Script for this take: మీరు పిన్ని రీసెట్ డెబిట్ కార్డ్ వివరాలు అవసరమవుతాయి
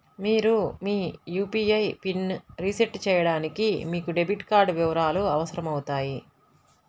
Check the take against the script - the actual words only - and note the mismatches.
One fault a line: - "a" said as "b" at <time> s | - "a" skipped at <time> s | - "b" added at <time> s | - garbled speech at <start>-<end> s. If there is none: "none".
- "మీ యూ.పీ.ఐ" added at 0.8 s
- "చేయడానికి మీకు" added at 3.1 s